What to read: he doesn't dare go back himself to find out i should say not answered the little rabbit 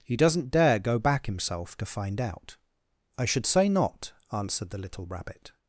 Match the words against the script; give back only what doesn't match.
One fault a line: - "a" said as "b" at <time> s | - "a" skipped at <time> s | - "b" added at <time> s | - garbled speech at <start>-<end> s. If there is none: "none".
none